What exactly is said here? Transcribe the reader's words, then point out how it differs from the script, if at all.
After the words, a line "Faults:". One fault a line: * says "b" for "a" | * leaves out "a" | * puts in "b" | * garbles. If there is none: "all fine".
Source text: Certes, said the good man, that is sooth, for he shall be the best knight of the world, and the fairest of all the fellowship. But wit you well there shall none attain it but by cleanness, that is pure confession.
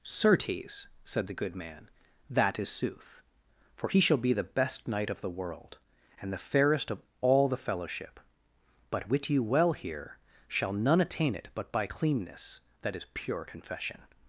Certes, said the good man, that is sooth, for he shall be the best knight of the world, and the fairest of all the fellowship. But wit you well here shall none attain it but by cleanness, that is pure confession.
Faults:
* says "here" for "there"